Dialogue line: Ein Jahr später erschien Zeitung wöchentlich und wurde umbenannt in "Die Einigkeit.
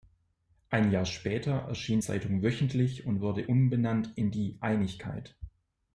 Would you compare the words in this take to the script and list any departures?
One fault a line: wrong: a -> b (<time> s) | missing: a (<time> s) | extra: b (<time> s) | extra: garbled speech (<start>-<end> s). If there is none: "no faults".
no faults